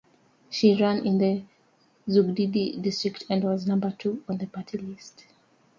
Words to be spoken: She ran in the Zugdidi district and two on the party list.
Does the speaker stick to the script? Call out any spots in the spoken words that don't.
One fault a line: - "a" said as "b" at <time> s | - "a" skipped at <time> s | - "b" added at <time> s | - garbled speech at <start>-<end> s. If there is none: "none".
- "was number" added at 3.4 s